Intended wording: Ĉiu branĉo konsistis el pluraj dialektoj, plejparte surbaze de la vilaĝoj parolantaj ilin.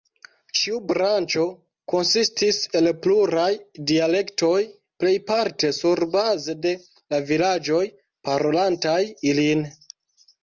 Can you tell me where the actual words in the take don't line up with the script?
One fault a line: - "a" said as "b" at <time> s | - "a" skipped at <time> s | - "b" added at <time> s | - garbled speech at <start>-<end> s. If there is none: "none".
none